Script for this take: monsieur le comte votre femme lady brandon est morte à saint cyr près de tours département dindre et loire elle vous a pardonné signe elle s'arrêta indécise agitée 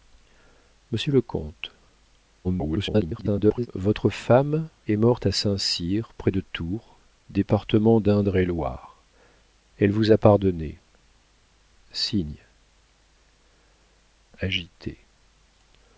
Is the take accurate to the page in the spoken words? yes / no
no